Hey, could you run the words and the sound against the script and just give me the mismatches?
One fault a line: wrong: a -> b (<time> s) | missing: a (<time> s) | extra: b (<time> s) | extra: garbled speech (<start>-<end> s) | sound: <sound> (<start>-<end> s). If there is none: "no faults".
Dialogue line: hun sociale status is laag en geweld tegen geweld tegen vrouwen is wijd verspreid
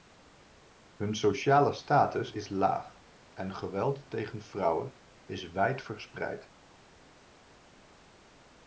missing: geweld tegen (4.4 s)